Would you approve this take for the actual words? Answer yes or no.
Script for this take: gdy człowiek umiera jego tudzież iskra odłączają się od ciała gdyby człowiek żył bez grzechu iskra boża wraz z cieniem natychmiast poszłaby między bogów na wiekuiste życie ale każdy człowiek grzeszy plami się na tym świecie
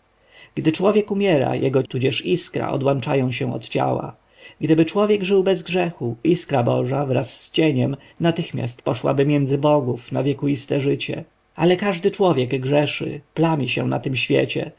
yes